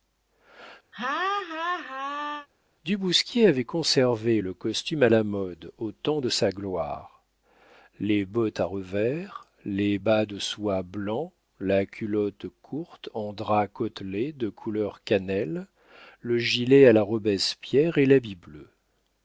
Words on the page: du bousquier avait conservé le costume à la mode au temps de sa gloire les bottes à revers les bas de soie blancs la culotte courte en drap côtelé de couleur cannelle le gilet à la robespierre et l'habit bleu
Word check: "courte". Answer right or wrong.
right